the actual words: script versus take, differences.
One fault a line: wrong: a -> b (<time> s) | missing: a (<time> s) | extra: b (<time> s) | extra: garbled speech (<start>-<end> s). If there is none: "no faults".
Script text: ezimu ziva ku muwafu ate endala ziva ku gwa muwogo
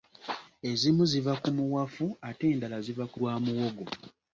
no faults